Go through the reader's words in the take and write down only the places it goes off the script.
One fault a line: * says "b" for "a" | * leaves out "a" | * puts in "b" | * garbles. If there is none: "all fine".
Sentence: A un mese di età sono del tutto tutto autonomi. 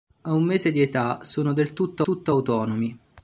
all fine